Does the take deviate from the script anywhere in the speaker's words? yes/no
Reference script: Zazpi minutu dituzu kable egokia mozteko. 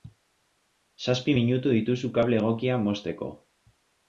no